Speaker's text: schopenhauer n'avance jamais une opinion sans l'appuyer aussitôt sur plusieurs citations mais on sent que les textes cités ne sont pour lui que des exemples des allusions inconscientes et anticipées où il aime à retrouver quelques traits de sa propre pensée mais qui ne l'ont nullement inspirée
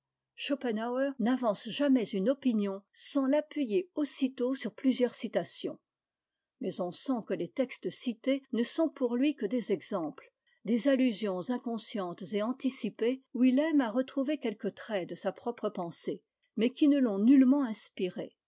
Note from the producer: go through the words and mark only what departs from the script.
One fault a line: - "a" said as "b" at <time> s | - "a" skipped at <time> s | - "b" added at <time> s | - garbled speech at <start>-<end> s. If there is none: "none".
none